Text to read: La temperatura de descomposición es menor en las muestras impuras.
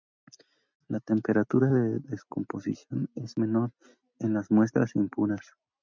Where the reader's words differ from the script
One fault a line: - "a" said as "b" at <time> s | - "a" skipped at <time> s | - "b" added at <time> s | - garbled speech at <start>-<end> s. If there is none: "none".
none